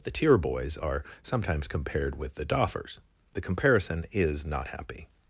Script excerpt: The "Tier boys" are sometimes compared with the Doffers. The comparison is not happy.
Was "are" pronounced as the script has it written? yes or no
yes